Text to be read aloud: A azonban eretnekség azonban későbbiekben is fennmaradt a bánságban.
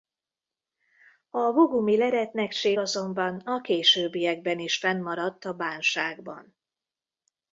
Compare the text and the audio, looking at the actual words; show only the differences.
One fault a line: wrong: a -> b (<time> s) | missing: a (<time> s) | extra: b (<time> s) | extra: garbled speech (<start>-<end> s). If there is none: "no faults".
wrong: azonban -> bogumil (1.5 s)
extra: a (3.4 s)